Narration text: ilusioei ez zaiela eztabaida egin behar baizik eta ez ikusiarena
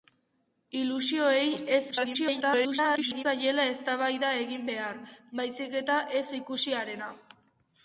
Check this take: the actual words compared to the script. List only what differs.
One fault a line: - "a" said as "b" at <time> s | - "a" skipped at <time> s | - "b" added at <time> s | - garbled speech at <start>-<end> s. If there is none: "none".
- garbled speech at 1.9-3.3 s